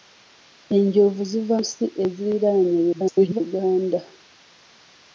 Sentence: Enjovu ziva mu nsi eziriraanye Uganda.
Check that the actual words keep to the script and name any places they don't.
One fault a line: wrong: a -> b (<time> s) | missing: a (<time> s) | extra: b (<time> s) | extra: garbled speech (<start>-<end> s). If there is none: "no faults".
missing: mu (1.6 s)
extra: garbled speech (2.9-3.4 s)